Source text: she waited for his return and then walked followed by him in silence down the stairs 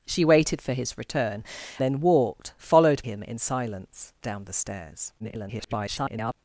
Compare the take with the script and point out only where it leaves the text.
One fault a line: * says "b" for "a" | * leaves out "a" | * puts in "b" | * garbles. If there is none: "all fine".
* leaves out "and"
* leaves out "by"
* garbles